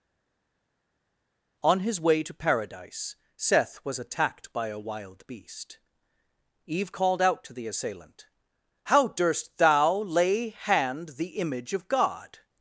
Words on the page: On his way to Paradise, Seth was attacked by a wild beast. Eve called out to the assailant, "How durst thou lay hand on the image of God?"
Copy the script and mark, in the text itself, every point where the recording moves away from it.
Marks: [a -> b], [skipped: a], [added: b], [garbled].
On his way to Paradise, Seth was attacked by a wild beast. Eve called out to the assailant, "How durst thou lay hand [skipped: on] the image of God?"